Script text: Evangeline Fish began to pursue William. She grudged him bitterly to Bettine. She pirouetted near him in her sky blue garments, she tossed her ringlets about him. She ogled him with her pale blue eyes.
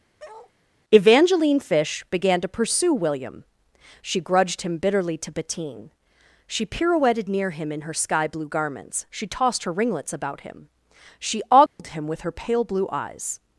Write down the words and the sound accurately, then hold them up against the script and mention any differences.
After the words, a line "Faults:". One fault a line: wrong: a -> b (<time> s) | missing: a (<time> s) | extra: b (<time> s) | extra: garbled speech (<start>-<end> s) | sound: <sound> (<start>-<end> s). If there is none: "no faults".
Evangeline Fish began to pursue William. She grudged him bitterly to Bettine. She pirouetted near him in her sky blue garments, she tossed her ringlets about him. She ogled him with her pale blue eyes.
Faults:
sound: bark (0.2-0.5 s)
sound: dropout (11.7-11.8 s)